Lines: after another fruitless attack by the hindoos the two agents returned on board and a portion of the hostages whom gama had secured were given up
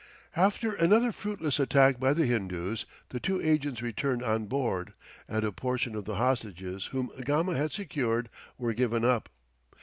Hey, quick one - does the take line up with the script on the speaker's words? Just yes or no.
yes